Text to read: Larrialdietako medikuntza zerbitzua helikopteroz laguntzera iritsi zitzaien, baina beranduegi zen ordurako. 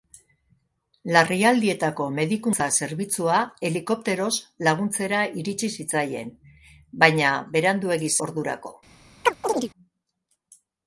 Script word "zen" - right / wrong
wrong